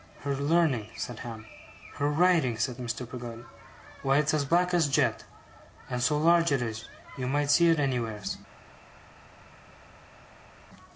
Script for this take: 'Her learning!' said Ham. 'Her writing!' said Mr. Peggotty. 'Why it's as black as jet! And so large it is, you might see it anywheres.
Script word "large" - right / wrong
right